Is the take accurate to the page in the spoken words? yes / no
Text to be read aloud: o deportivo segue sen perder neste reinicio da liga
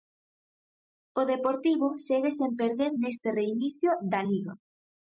yes